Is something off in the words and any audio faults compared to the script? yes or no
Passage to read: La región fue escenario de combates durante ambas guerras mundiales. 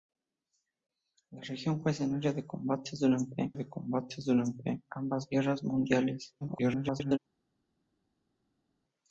yes